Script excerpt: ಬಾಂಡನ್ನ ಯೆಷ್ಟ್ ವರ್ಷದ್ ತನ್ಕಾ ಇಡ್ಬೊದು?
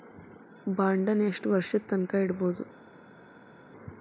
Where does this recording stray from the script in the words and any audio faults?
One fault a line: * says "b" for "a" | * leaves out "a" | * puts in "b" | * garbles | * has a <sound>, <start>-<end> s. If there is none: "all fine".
all fine